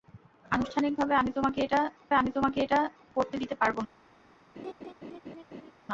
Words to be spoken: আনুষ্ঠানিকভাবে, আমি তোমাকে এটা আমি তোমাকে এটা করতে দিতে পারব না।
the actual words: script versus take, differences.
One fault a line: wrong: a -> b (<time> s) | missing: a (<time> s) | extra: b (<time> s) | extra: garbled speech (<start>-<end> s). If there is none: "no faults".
no faults